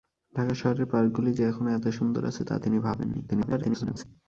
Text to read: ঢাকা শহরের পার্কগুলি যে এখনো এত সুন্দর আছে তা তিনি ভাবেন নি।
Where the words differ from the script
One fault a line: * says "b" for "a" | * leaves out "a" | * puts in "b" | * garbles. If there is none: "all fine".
* garbles